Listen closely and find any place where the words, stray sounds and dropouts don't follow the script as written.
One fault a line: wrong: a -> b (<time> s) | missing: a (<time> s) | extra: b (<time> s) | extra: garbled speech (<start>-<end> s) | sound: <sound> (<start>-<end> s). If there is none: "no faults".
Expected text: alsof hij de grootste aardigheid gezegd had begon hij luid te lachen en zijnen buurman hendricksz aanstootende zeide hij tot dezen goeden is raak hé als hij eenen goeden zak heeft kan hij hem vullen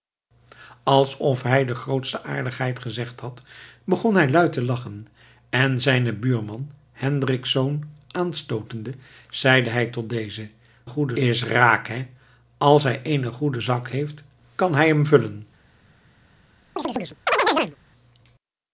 sound: chirp (16.8-17.8 s)